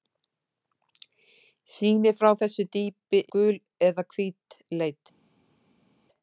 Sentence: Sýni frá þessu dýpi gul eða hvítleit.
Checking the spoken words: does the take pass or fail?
pass